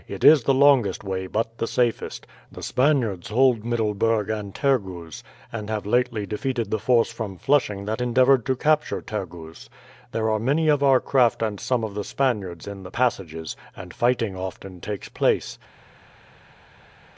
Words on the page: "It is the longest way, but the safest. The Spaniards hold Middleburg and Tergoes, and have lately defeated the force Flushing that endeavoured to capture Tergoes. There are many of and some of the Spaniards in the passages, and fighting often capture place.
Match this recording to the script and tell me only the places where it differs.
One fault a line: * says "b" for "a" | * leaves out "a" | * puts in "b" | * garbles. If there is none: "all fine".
* puts in "from"
* puts in "our craft"
* says "takes" for "capture"